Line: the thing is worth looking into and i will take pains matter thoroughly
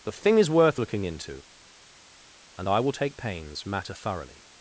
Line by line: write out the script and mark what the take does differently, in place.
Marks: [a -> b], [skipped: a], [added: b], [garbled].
the thing is worth looking into and i will take pains matter thoroughly